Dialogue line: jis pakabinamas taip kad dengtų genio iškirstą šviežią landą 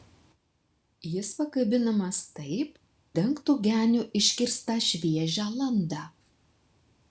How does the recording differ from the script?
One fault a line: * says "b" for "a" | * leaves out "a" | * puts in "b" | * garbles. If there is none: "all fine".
* leaves out "kad"